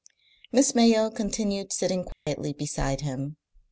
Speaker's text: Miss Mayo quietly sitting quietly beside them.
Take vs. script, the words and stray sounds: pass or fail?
fail